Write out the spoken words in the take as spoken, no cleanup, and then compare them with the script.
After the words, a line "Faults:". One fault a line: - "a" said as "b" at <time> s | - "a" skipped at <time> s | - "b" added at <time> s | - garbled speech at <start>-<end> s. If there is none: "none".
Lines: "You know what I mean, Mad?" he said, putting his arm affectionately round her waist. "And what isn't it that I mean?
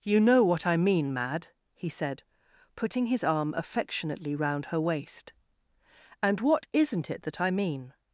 "You know what I mean, Mad?" he said, putting his arm affectionately round her waist. "And what isn't it that I mean?
Faults:
none